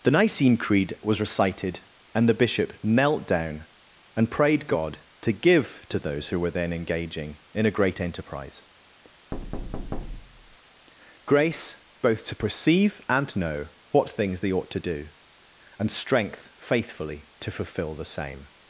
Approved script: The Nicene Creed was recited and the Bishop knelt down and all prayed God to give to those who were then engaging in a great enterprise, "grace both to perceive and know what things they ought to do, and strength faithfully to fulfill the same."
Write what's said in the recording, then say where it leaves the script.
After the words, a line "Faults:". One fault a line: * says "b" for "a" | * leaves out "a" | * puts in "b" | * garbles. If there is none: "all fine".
The Nicene Creed was recited and the Bishop knelt down and prayed God to give to those who were then engaging in a great enterprise, "grace both to perceive and know what things they ought to do, and strength faithfully to fulfill the same."
Faults:
* leaves out "all"